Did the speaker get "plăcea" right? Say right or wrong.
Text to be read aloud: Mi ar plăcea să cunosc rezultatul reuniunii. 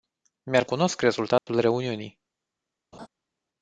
wrong